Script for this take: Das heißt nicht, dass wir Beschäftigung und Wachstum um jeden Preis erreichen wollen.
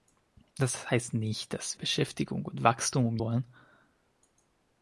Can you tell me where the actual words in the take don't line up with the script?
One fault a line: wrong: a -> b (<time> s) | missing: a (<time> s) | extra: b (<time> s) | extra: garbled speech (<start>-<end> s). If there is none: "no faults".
missing: wir (1.8 s)
missing: jeden Preis erreichen (3.2 s)